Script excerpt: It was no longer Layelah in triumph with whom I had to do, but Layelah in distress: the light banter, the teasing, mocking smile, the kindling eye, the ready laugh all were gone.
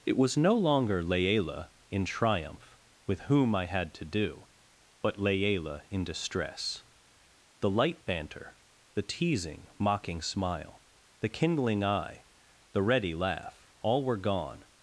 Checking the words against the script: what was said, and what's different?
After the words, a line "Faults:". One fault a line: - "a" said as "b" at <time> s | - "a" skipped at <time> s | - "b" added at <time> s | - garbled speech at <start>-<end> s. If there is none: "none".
It was no longer Layelah in triumph with whom I had to do, but Layelah in distress: the light banter, the teasing, mocking smile, the kindling eye, the ready laugh all were gone.
Faults:
none